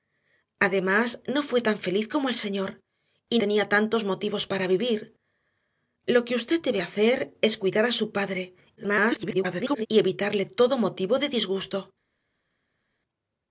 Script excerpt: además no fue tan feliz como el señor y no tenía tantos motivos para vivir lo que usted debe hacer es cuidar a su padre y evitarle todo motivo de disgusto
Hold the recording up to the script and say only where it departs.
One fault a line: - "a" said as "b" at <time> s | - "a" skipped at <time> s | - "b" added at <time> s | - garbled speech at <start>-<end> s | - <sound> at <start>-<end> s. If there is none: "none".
- "no" skipped at 3.4 s
- garbled speech at 8.8-9.9 s